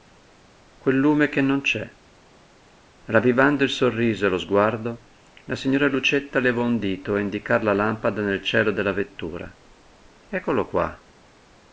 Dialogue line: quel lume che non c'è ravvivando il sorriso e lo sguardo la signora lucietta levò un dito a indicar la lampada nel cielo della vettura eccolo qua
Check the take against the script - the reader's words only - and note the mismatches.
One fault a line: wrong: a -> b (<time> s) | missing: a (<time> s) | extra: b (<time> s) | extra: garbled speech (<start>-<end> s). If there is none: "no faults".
no faults